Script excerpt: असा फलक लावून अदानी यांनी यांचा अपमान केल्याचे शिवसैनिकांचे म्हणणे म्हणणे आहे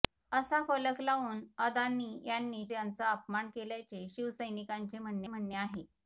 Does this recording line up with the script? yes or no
yes